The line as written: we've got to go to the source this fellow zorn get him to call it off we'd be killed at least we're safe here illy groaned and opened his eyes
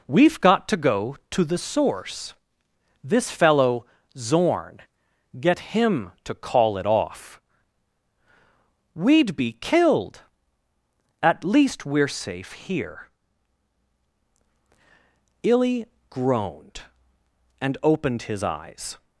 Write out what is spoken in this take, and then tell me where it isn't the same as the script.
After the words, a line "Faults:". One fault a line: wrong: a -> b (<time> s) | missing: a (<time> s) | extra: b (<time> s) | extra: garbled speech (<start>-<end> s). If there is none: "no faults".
we've got to go to the source this fellow zorn get him to call it off we'd be killed at least we're safe here illy groaned and opened his eyes
Faults:
no faults